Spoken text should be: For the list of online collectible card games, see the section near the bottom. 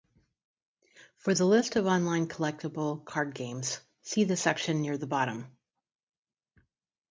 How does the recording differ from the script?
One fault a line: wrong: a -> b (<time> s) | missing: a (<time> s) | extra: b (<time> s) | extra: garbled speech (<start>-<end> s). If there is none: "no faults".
no faults